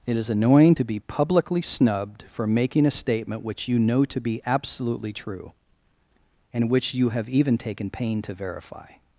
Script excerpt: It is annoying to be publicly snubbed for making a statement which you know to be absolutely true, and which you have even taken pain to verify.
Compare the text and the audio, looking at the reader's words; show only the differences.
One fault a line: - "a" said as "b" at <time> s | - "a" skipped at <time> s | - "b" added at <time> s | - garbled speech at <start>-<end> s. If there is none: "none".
none